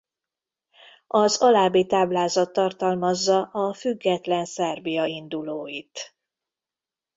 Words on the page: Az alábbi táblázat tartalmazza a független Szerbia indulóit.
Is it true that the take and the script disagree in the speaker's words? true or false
false